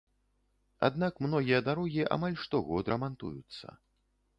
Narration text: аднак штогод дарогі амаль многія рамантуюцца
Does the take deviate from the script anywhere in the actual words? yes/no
yes